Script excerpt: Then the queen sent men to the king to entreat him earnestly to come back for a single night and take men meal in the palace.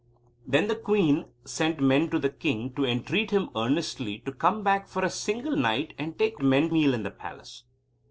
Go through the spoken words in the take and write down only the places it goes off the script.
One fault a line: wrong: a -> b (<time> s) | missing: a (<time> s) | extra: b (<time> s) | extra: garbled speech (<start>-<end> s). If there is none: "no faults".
no faults